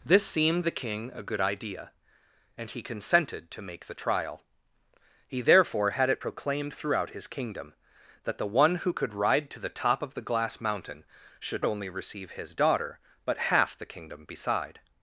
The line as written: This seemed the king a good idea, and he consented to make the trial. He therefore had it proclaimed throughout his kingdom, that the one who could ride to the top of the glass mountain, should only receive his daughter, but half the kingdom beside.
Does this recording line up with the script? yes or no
yes